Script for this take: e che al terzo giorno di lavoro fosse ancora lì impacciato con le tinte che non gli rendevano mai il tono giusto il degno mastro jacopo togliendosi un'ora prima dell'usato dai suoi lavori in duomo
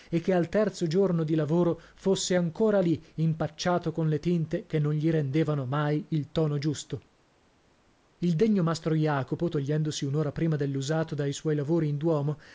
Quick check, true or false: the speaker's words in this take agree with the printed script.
true